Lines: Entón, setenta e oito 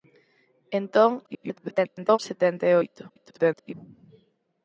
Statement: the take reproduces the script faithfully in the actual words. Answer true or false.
false